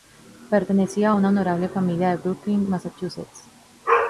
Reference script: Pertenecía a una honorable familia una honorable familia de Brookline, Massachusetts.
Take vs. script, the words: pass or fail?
fail